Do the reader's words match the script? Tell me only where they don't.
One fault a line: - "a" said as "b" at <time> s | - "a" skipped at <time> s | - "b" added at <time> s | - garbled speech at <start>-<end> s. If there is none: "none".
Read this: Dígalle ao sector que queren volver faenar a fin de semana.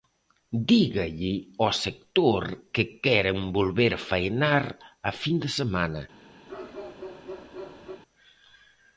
none